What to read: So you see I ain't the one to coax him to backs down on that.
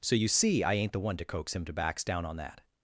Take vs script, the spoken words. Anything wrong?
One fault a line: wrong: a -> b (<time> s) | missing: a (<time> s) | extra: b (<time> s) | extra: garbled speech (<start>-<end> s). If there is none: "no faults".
no faults